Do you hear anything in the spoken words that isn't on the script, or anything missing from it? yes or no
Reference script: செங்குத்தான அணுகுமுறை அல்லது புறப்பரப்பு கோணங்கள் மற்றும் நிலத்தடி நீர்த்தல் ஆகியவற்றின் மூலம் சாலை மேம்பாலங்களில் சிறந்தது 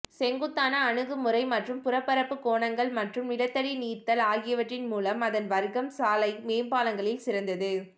yes